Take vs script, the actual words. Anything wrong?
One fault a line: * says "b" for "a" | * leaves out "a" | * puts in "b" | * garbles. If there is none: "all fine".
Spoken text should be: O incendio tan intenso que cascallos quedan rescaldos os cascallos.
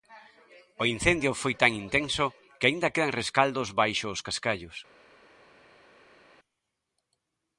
* puts in "foi"
* says "aínda" for "cascallos"
* puts in "baixo"